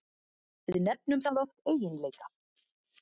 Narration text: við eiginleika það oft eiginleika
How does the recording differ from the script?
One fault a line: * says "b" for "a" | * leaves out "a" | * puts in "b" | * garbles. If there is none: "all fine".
* says "nefnum" for "eiginleika"